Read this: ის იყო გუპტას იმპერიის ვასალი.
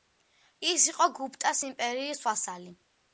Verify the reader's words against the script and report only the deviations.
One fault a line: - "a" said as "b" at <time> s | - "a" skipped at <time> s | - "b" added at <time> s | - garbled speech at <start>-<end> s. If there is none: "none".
none